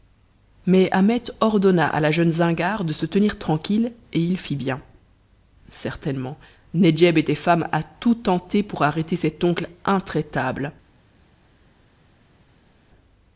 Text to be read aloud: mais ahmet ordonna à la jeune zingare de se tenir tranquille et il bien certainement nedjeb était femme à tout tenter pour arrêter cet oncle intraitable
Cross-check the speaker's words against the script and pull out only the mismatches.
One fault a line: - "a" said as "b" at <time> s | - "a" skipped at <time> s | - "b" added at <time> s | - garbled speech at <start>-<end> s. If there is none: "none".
- "fit" added at 4.4 s